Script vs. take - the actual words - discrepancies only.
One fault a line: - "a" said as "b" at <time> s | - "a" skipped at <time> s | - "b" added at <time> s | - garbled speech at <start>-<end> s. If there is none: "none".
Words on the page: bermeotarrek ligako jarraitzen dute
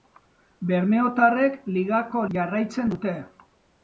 none